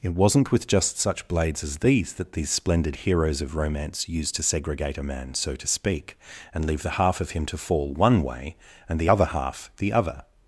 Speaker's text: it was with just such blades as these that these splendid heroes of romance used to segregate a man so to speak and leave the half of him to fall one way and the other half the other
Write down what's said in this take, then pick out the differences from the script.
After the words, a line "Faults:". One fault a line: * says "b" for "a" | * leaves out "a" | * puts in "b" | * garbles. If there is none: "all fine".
it wasn't with just such blades as these that these splendid heroes of romance used to segregate a man so to speak and leave the half of him to fall one way and the other half the other
Faults:
* says "wasn't" for "was"